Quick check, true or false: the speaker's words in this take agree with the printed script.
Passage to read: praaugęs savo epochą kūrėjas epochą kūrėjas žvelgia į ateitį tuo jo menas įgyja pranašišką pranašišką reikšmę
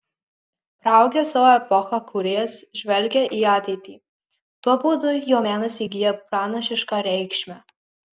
false